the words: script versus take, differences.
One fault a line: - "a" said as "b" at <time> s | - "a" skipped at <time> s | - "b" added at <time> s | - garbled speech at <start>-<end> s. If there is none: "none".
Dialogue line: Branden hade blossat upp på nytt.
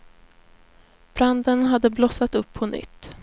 none